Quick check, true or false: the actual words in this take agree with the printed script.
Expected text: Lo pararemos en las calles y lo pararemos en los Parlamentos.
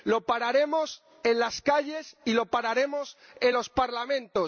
true